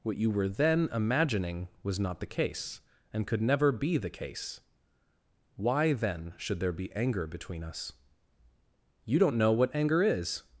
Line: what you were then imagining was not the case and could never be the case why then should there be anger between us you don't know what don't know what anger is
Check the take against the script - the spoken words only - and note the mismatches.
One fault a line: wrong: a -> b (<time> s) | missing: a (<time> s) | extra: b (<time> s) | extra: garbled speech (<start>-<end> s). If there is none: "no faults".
missing: don't know what (9.8 s)